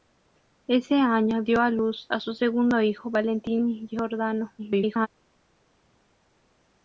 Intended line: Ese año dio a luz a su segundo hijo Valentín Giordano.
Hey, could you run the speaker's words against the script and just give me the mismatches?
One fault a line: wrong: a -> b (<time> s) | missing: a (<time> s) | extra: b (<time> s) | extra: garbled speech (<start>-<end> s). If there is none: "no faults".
extra: garbled speech (4.6-5.1 s)